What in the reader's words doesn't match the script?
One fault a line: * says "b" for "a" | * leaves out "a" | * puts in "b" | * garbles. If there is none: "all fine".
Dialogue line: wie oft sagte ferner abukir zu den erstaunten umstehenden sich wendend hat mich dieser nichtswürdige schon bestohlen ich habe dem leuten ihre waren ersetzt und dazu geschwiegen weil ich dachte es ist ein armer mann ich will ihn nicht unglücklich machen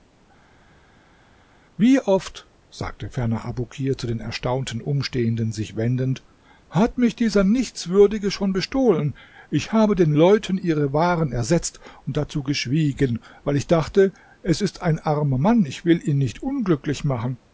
* says "den" for "dem"